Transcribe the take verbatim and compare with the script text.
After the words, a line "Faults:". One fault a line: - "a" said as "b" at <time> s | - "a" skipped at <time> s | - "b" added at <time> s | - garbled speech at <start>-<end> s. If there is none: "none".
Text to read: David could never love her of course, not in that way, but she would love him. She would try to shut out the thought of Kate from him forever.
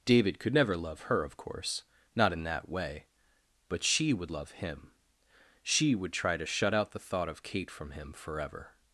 David could never love her of course, not in that way, but she would love him. She would try to shut out the thought of Kate from him forever.
Faults:
none